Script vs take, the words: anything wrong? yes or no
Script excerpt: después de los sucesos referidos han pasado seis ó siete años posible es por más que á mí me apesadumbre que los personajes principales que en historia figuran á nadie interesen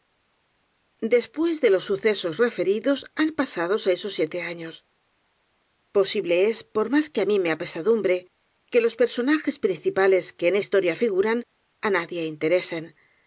no